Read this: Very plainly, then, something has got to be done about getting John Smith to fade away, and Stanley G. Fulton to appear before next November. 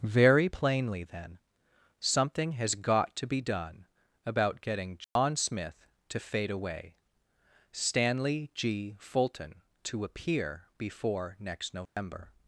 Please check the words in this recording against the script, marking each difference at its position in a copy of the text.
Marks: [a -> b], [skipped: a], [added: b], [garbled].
Very plainly, then, something has got to be done about getting John Smith to fade away, [skipped: and] Stanley G. Fulton to appear before next November.